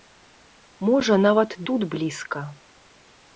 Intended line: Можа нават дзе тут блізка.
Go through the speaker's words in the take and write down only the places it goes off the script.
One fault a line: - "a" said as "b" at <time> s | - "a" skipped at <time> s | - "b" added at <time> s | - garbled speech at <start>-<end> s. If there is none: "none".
- "дзе" skipped at 1.6 s